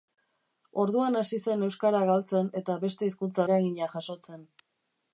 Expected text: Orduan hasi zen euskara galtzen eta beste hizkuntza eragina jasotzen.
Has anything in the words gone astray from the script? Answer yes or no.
no